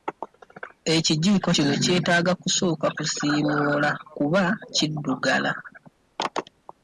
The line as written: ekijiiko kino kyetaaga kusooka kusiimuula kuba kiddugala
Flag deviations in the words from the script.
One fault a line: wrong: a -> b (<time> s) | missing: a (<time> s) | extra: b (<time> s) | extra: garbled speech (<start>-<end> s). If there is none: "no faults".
no faults